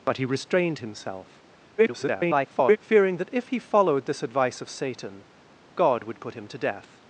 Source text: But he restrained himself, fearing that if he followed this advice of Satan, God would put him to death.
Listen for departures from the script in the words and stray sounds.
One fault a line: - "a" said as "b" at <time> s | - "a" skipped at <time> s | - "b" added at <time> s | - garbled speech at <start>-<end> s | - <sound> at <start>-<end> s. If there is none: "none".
- garbled speech at 1.8-2.8 s